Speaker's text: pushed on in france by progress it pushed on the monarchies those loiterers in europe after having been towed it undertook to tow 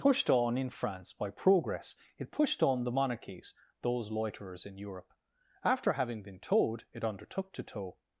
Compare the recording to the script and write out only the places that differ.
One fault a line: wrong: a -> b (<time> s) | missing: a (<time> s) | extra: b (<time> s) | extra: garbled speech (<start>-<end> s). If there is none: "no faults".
no faults